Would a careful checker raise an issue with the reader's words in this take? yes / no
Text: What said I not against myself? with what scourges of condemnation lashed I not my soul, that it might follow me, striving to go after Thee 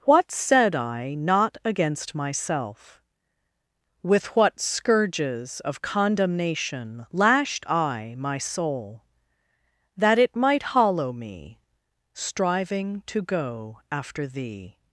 yes